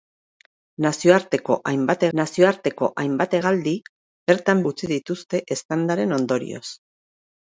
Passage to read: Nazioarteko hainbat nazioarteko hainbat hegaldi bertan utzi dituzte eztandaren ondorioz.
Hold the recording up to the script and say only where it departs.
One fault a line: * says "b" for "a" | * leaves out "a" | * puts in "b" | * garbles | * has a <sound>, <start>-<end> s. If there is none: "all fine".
all fine